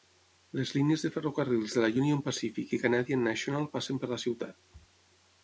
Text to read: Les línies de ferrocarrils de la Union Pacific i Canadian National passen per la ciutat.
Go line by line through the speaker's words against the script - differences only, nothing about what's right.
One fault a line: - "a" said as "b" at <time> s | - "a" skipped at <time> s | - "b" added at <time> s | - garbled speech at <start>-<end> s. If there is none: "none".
none